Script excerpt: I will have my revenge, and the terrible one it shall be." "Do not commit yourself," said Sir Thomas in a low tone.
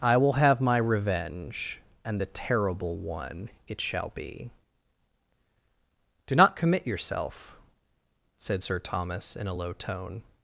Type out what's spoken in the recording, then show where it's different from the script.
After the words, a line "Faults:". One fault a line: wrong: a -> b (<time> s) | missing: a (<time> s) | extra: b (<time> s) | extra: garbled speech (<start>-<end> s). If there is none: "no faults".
I will have my revenge, and the terrible one it shall be." "Do not commit yourself," said Sir Thomas in a low tone.
Faults:
no faults